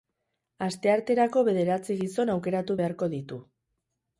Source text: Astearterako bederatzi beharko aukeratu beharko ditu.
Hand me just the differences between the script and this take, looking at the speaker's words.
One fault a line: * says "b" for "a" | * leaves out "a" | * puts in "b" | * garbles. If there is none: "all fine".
* says "gizon" for "beharko"